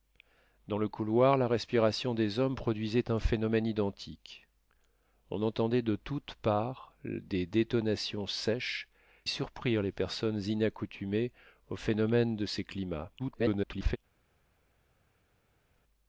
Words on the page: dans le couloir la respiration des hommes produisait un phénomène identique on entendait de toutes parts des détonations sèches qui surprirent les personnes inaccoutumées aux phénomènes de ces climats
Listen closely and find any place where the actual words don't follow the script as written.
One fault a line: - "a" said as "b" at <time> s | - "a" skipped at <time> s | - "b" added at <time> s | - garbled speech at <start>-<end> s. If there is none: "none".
- "qui" skipped at 8.9 s
- garbled speech at 13.2-14.0 s